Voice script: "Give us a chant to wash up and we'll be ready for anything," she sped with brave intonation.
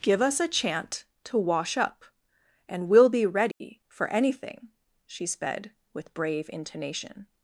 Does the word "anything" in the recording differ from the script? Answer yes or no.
no